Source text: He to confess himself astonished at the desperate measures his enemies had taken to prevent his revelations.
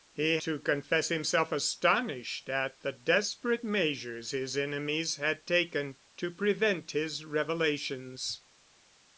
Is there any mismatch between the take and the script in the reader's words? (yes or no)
no